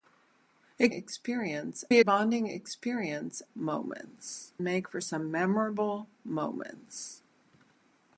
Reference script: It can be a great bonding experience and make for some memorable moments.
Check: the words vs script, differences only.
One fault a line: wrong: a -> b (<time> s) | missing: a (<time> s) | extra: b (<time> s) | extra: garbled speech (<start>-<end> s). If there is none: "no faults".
wrong: can -> experience (0.9 s)
missing: great (2.0 s)
wrong: and -> moments (3.5 s)